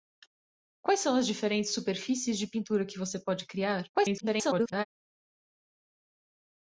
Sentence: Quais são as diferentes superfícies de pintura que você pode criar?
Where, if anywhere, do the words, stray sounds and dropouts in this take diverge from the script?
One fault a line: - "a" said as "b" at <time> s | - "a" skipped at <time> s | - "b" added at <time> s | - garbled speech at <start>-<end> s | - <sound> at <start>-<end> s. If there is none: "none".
- garbled speech at 3.9-4.8 s